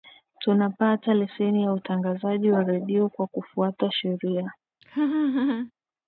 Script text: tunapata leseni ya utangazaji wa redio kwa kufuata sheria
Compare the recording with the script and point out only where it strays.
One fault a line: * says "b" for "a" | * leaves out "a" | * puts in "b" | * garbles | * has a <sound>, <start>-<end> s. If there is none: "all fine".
* has a laugh, 4.8-5.7 s